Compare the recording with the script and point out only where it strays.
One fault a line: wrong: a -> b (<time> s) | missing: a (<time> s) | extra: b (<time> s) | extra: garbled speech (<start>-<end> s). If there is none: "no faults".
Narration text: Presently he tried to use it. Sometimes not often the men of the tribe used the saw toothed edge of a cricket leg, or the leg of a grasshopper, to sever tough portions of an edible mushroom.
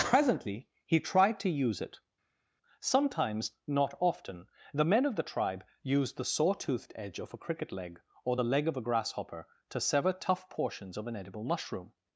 no faults